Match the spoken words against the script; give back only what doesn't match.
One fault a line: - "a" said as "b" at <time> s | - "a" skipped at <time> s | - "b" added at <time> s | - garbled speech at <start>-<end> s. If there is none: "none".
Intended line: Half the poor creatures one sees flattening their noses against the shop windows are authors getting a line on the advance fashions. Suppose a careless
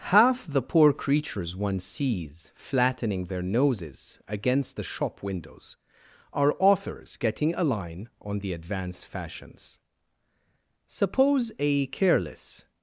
none